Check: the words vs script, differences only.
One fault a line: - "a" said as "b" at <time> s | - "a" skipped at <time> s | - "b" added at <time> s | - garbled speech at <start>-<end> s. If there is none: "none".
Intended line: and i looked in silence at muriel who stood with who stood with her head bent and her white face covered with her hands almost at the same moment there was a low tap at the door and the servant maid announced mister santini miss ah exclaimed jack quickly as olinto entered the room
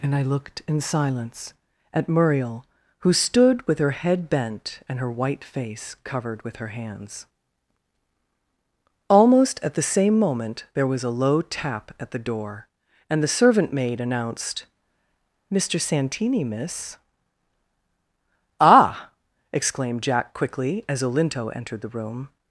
- "who stood with" skipped at 3.8 s